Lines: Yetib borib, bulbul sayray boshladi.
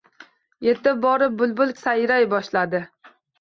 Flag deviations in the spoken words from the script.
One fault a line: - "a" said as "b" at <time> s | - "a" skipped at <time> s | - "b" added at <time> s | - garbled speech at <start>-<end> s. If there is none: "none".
none